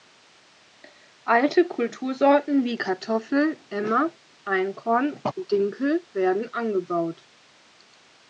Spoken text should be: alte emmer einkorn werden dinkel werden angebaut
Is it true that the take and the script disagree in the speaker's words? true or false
true